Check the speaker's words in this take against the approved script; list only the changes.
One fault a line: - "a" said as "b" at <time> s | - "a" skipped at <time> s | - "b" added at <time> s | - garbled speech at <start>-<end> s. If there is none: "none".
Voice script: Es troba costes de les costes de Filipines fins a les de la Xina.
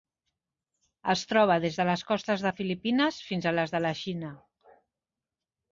- "costes" said as "des" at 1.6 s